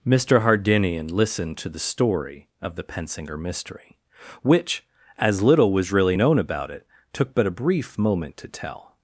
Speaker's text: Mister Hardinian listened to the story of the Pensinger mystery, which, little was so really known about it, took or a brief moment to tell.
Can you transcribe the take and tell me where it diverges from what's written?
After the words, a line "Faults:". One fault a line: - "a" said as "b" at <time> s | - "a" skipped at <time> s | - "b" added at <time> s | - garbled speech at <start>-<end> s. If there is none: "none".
Mister Hardinian listened to the story of the Pensinger mystery, which, as little was really known about it, took but a brief moment to tell.
Faults:
- "as" added at 5.2 s
- "so" skipped at 5.9 s
- "or" said as "but" at 7.3 s